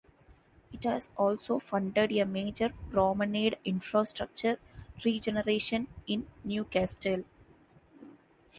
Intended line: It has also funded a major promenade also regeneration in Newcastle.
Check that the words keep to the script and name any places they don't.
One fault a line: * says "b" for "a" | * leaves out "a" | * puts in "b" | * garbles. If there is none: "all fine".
* says "infrastructure" for "also"